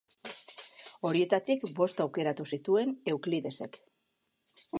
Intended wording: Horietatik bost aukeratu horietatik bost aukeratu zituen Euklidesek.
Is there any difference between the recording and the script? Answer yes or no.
yes